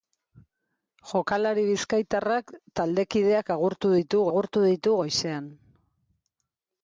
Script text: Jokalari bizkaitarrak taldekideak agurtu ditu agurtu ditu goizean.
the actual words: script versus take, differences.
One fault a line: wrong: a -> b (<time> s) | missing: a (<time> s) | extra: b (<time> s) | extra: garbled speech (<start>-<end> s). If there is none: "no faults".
no faults